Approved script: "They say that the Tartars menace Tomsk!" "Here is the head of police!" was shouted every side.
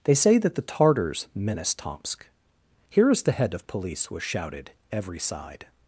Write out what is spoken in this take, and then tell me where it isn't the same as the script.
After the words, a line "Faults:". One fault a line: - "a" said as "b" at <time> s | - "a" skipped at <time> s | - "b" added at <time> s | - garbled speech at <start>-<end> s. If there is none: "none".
"They say that the Tartars menace Tomsk!" "Here is the head of police!" was shouted every side.
Faults:
none